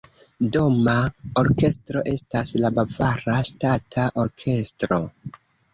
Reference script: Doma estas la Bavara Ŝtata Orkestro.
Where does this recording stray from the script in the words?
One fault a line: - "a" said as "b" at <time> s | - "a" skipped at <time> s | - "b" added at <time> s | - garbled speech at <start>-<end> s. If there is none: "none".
- "orkestro" added at 1.4 s